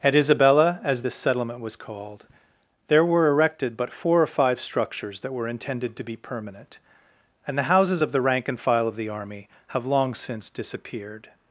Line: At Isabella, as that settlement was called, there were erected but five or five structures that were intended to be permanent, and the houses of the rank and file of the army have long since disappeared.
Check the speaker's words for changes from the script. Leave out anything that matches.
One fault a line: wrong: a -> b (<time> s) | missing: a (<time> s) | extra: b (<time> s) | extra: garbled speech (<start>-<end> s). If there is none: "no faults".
wrong: that -> this (1.0 s)
wrong: five -> four (3.9 s)